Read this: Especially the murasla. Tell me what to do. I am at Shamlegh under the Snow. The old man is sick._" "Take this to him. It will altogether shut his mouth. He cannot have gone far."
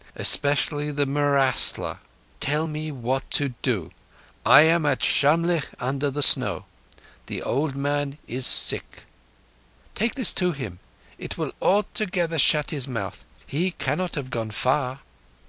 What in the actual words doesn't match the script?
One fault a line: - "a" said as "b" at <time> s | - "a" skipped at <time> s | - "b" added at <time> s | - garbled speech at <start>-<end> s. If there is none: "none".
none